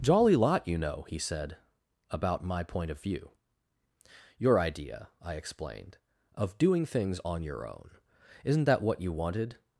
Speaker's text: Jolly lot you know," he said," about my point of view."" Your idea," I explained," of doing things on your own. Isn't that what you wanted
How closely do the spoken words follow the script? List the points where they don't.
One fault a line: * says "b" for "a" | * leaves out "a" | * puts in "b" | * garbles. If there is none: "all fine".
all fine